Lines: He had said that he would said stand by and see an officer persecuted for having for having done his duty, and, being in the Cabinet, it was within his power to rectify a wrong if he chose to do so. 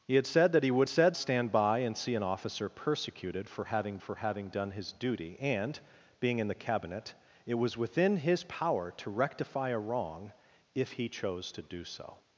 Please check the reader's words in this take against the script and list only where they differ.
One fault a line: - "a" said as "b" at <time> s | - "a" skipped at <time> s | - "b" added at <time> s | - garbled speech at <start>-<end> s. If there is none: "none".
none